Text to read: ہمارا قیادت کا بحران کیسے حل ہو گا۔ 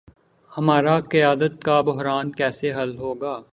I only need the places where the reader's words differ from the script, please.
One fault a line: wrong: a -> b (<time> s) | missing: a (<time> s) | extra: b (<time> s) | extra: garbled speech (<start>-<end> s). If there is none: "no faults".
no faults